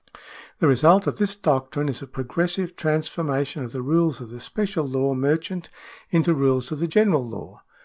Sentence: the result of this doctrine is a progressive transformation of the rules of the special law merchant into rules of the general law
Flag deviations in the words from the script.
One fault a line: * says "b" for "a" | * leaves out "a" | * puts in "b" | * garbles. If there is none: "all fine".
all fine